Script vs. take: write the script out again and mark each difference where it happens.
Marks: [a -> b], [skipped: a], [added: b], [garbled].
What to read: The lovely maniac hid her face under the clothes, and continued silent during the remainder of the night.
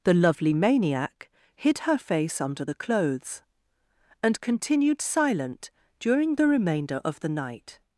The lovely maniac hid her face under the clothes, and continued silent during the remainder of the night.